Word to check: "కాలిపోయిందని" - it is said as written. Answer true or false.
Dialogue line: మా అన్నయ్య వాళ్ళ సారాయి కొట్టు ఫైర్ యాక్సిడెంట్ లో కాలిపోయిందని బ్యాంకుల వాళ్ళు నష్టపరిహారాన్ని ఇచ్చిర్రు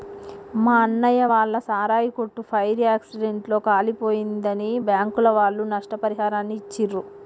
true